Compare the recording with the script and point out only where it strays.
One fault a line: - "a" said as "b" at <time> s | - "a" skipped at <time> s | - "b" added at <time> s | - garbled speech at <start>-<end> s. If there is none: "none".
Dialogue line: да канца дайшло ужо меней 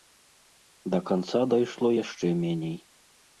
- "ужо" said as "яшчэ" at 2.0 s